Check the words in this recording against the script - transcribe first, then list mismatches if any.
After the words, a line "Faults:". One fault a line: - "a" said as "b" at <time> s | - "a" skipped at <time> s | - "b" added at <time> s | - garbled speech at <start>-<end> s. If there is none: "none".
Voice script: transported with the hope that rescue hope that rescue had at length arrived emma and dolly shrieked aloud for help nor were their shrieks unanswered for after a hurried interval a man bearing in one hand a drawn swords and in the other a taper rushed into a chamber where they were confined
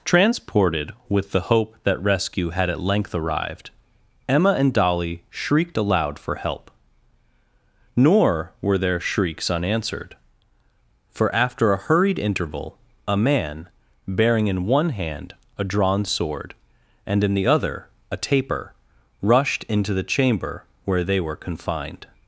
transported with the hope that rescue had at length arrived emma and dolly shrieked aloud for help nor were their shrieks unanswered for after a hurried interval a man bearing in one hand a drawn sword and in the other a taper rushed into the chamber where they were confined
Faults:
- "hope that rescue" skipped at 2.5 s
- "swords" said as "sword" at 16.0 s
- "a" said as "the" at 19.9 s